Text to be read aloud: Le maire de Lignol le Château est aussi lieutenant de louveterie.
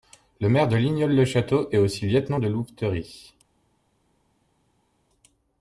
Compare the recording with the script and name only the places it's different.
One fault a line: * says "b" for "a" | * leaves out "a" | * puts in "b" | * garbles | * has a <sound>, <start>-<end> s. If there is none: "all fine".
all fine